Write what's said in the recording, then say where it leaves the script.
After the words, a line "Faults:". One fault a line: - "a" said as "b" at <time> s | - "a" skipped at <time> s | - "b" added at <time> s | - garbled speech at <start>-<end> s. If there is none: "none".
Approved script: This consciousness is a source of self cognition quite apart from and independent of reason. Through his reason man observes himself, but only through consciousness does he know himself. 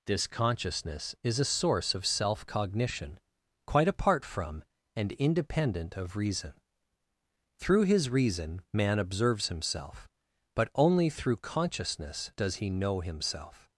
This consciousness is a source of self cognition quite apart from and independent of reason. Through his reason man observes himself, but only through consciousness does he know himself.
Faults:
none